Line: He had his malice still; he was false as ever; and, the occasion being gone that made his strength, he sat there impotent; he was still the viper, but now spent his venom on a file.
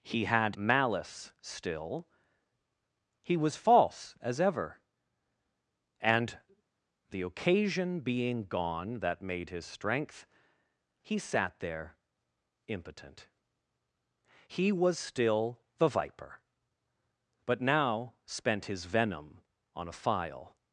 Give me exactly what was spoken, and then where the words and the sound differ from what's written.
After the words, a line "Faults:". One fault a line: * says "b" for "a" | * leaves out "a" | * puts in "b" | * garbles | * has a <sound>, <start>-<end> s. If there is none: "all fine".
He had malice still; he was false as ever; and, the occasion being gone that made his strength, he sat there impotent; he was still the viper, but now spent his venom on a file.
Faults:
* leaves out "his"